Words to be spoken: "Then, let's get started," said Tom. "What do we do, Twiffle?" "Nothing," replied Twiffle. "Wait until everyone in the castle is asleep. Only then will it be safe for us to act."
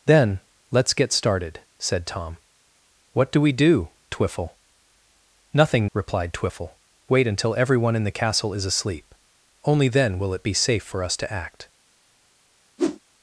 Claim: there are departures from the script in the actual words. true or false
false